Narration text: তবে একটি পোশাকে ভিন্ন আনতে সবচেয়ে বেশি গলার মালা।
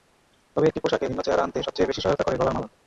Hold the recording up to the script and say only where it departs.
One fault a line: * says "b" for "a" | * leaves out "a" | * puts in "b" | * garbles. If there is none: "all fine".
* puts in "চেহারা"
* puts in "সহায়তা করে"